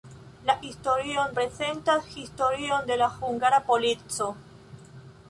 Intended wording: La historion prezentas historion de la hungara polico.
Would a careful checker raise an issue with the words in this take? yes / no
no